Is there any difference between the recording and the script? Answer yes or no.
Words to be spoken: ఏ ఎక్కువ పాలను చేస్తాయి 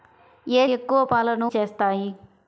no